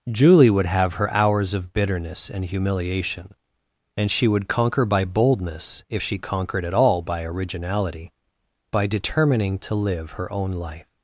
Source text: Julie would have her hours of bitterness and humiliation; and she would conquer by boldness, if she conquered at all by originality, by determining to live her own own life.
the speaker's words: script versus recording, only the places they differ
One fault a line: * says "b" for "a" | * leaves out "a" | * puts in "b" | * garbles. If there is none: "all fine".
* leaves out "own"